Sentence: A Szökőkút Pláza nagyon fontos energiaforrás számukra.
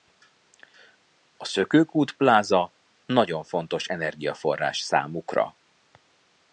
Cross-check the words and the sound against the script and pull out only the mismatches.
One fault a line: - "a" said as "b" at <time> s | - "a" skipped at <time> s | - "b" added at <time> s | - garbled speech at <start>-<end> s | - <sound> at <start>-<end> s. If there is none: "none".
none